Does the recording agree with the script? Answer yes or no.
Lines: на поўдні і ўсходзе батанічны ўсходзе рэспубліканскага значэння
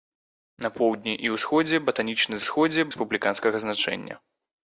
yes